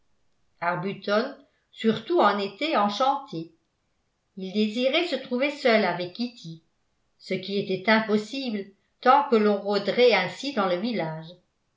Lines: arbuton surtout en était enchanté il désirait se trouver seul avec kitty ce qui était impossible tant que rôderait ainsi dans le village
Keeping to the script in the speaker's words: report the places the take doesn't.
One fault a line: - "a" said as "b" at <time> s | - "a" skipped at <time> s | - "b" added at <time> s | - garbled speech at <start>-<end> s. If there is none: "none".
- "l'on" added at 9.3 s